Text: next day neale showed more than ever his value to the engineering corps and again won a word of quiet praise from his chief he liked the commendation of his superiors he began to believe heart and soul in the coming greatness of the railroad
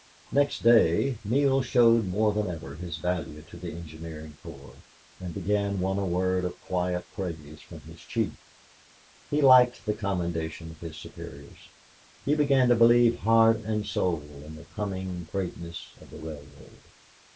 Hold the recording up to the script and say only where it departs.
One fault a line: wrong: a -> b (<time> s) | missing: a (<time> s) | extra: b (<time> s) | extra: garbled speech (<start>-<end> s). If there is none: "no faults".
no faults